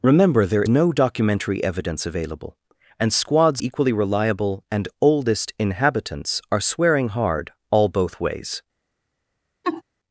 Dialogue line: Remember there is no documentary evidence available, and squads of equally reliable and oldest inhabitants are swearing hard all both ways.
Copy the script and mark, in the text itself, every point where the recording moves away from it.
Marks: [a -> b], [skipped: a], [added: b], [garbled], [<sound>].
Remember there [skipped: is] no documentary evidence available, and squads [skipped: of] equally reliable and oldest inhabitants are swearing hard all both ways. [laugh]